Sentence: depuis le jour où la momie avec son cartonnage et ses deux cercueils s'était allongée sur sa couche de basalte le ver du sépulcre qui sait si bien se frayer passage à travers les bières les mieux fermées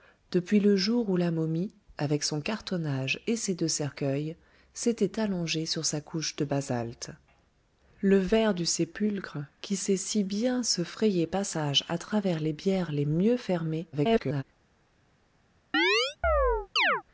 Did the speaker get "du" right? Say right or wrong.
right